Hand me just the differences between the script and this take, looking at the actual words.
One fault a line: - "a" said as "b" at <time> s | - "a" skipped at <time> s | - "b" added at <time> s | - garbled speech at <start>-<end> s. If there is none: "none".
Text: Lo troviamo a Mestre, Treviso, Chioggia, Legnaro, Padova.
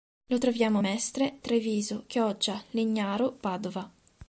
none